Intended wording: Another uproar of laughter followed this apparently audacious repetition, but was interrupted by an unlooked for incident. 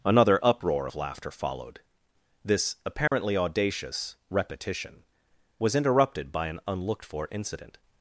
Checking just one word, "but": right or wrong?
wrong